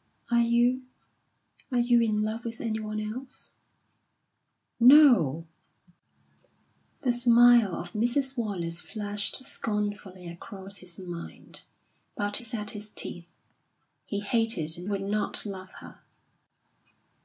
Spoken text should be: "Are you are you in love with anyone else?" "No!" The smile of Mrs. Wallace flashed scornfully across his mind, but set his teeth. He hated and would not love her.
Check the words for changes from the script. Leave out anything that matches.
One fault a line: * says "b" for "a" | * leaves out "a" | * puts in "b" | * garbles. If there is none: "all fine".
all fine